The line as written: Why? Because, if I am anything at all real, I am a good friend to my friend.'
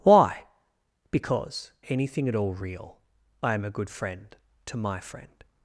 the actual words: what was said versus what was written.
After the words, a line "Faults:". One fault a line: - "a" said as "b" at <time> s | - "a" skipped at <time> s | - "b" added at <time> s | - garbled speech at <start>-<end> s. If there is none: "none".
Why? Because, anything at all real, I am a good friend to my friend.'
Faults:
- "if I am" skipped at 1.7 s